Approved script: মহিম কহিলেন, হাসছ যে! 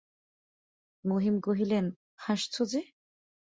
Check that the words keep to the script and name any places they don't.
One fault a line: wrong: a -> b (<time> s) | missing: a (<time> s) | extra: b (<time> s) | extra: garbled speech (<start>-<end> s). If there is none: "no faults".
no faults